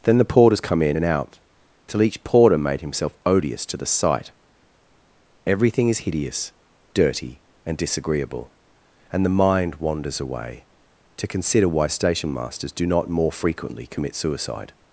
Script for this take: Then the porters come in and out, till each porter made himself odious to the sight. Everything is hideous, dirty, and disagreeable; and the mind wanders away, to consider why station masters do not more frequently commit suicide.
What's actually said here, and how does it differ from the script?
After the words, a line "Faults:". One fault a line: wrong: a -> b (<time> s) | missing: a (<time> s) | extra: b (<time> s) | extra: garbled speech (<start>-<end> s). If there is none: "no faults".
Then the porters come in and out, till each porter made himself odious to the sight. Everything is hideous, dirty, and disagreeable; and the mind wanders away, to consider why station masters do not more frequently commit suicide.
Faults:
no faults